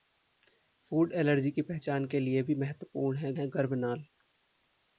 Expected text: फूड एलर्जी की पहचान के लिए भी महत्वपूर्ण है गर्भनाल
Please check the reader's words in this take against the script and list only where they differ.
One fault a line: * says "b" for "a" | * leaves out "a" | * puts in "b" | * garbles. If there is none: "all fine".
* puts in "है"